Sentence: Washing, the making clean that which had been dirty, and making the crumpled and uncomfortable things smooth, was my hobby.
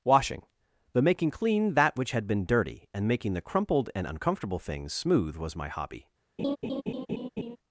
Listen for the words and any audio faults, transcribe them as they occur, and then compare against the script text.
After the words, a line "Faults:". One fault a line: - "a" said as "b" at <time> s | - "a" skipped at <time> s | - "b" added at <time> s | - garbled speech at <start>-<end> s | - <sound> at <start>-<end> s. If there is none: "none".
Washing, the making clean that which had been dirty, and making the crumpled and uncomfortable things smooth, was my hobby.
Faults:
- laugh at 6.4-7.6 s